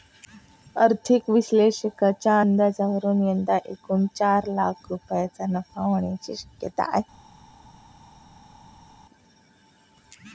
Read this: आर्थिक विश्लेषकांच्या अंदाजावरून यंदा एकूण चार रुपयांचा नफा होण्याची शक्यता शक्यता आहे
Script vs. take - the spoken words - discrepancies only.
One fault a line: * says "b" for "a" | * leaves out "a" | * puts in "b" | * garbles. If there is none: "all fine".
* puts in "लाख"
* leaves out "शक्यता"